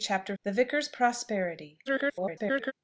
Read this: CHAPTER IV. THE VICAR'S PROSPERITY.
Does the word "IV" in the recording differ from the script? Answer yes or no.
yes